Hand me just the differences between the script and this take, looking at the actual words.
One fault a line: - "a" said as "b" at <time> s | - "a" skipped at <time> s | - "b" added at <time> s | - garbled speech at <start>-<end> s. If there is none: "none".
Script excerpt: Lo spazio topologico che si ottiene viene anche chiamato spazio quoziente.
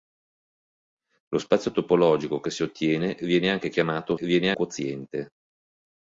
- "spazio" said as "viene" at 4.2 s